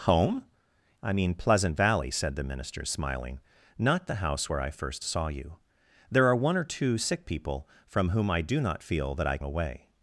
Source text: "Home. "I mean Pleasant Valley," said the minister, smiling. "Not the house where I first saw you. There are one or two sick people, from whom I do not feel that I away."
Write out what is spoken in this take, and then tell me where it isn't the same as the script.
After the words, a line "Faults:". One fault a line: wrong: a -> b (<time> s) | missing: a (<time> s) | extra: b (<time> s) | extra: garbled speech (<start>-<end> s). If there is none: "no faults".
"Home. "I mean Pleasant Valley," said the minister, smiling. "Not the house where I first saw you. There are one or two sick people, from whom I do not feel that I away."
Faults:
no faults